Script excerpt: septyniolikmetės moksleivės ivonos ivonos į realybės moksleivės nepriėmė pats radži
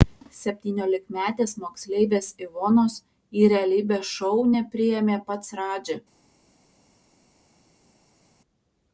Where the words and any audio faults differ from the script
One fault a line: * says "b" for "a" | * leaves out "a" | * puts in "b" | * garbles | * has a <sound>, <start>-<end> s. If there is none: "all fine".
* leaves out "ivonos"
* says "šou" for "moksleivės"